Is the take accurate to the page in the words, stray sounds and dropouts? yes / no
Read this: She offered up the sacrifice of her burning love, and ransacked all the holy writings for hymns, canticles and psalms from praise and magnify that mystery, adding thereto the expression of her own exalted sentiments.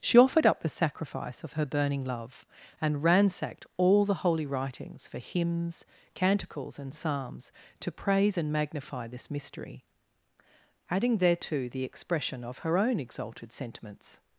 no